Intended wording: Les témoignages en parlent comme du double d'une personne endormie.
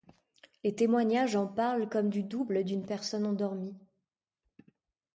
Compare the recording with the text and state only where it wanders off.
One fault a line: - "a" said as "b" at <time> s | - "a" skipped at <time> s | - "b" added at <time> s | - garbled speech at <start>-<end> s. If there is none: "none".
none